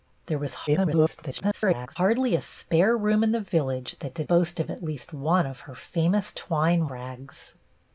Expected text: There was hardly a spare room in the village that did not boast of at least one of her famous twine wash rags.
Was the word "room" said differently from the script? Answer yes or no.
no